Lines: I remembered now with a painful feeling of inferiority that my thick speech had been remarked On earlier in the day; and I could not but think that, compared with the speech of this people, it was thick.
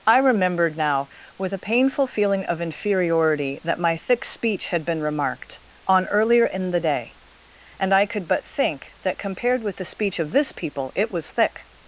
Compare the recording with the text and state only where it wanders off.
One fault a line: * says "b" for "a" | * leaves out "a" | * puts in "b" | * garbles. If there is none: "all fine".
* leaves out "not"